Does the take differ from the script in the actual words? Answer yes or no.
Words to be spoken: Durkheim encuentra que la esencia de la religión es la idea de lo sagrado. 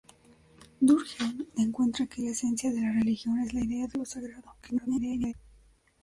yes